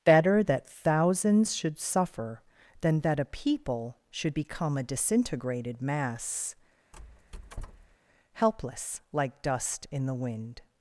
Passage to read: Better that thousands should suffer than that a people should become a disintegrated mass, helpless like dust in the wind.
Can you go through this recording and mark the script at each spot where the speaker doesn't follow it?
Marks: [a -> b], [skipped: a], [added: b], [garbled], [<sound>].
Better that thousands should suffer than that a people should become a disintegrated mass, [squeak] helpless like dust in the wind.